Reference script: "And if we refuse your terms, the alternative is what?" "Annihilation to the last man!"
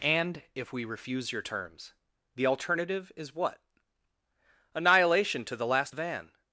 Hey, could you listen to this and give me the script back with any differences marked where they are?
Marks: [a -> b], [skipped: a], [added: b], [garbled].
"And if we refuse your terms, the alternative is what?" "Annihilation to the last [man!" -> van]